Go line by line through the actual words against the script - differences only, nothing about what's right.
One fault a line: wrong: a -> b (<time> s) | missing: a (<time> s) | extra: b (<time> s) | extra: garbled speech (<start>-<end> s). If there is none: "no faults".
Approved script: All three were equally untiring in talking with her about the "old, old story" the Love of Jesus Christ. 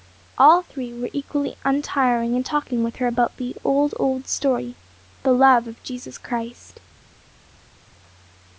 no faults